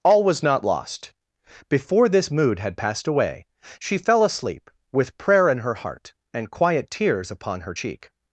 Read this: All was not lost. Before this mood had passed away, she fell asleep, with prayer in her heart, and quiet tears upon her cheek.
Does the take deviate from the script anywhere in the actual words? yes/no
no